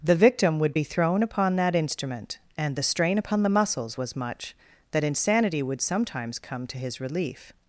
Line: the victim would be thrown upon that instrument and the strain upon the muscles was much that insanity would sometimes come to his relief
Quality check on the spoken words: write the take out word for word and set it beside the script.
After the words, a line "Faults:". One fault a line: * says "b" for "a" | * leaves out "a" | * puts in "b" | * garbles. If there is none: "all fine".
the victim would be thrown upon that instrument and the strain upon the muscles was much that insanity would sometimes come to his relief
Faults:
all fine